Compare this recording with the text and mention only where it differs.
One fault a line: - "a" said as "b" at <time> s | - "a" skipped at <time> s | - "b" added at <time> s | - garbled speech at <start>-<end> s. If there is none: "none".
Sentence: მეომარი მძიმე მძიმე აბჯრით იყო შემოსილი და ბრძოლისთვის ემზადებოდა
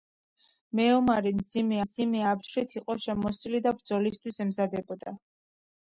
none